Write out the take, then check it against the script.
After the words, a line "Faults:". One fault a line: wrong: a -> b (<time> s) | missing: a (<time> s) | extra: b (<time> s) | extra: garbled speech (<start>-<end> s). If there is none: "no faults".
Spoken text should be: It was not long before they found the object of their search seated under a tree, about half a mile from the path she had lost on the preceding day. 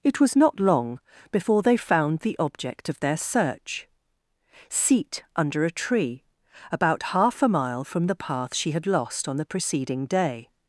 It was not long before they found the object of their search seat under a tree, about half a mile from the path she had lost on the preceding day.
Faults:
wrong: seated -> seat (4.7 s)